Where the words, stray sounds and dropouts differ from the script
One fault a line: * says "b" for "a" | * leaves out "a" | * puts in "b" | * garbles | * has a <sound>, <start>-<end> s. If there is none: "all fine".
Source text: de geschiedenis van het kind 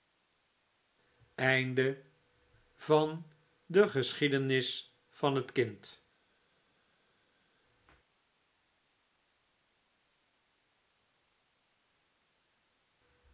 all fine